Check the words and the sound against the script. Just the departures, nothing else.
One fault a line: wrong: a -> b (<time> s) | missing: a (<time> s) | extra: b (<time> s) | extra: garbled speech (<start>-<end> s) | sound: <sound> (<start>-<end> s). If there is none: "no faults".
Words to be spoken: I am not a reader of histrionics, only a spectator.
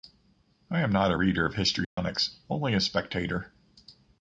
sound: dropout (1.8-2.0 s)